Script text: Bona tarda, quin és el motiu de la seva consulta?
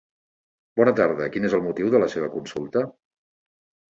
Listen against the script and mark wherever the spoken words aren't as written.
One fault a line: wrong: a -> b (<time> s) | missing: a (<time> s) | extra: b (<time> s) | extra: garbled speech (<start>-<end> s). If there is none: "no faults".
no faults